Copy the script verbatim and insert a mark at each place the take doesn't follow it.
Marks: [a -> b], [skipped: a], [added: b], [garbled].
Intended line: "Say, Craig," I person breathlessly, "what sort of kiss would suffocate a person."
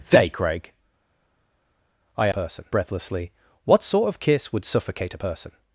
"Say, Craig," I person breathlessly, "what sort of kiss would suffocate a person."